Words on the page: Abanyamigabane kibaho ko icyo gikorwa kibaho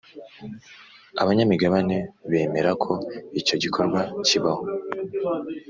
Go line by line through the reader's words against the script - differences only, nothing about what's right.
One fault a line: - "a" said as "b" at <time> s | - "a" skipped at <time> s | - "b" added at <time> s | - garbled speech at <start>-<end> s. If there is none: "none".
- "kibaho" said as "bemera" at 2.3 s